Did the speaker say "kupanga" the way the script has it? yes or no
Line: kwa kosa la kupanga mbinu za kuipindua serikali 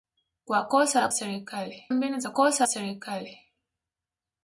no